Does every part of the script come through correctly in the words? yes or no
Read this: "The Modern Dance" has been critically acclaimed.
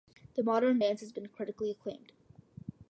yes